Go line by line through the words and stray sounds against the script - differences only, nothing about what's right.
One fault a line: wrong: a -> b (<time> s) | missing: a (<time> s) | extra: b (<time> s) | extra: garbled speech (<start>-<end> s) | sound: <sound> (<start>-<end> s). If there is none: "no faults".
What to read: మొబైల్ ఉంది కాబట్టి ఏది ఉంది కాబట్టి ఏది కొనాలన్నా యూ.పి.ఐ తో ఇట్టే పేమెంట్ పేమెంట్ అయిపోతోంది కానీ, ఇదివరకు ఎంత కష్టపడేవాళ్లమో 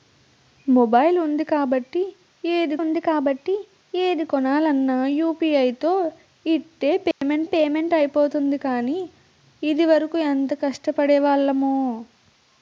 sound: dropout (7.1-7.2 s)